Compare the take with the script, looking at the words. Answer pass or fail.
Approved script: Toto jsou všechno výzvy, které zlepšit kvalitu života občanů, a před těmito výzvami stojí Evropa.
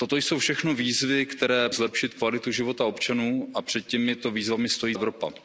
pass